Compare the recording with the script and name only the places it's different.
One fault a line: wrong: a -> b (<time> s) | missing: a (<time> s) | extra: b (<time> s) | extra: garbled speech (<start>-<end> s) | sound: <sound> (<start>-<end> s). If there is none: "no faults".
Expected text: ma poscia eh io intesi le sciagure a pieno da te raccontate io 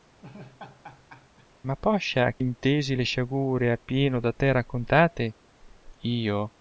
sound: laugh (0.2-1.5 s)
missing: io (2.4 s)